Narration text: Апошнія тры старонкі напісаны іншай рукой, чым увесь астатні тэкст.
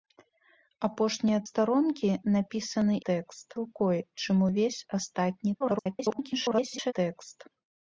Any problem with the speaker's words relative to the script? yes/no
yes